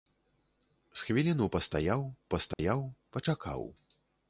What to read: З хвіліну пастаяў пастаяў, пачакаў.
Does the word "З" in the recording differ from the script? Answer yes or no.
no